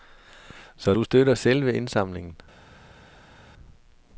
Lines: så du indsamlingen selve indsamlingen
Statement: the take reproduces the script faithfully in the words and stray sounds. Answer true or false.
false